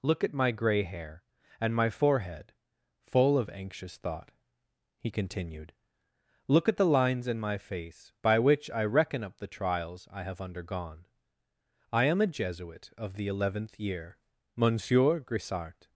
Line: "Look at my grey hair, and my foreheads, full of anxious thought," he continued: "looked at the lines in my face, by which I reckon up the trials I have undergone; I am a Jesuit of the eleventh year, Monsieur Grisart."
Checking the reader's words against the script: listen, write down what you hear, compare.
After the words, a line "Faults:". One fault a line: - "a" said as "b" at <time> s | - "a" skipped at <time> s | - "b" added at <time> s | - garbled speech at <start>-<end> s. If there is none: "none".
"Look at my grey hair, and my forehead, full of anxious thought," he continued: "look at the lines in my face, by which I reckon up the trials I have undergone; I am a Jesuit of the eleventh year, Monsieur Grisart."
Faults:
- "foreheads" said as "forehead" at 1.9 s
- "looked" said as "look" at 6.5 s